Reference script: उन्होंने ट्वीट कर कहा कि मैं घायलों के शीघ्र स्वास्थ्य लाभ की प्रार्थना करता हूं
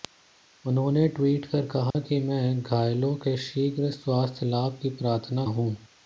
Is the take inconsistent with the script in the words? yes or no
yes